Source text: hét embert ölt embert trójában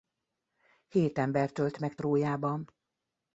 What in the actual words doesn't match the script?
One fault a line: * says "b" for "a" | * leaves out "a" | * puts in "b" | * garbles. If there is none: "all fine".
* says "meg" for "embert"